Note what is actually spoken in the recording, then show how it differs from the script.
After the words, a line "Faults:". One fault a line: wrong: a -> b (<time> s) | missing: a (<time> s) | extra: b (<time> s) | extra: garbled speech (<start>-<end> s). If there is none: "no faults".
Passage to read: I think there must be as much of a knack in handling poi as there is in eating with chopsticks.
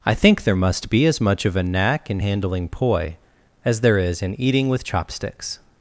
I think there must be as much of a knack in handling poi as there is in eating with chopsticks.
Faults:
no faults